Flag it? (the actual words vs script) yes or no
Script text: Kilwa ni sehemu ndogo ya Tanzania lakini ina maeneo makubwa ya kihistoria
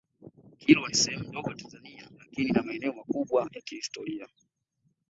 no